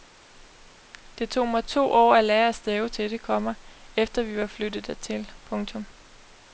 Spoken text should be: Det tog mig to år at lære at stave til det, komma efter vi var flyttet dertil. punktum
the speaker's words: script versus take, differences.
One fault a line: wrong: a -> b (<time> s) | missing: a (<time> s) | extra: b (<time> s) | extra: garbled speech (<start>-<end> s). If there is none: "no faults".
no faults